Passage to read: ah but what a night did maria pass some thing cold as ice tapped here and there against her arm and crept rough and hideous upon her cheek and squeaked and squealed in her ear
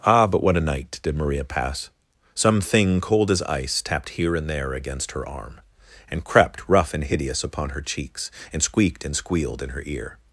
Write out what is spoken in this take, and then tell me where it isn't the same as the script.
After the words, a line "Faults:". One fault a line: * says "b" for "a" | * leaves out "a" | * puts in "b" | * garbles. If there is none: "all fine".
ah but what a night did maria pass some thing cold as ice tapped here and there against her arm and crept rough and hideous upon her cheeks and squeaked and squealed in her ear
Faults:
* says "cheeks" for "cheek"